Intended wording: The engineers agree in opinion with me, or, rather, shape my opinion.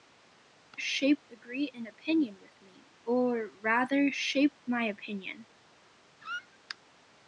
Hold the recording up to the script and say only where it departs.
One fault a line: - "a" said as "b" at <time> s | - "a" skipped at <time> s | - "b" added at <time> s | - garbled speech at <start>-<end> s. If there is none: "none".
- "engineers" said as "shape" at 0.8 s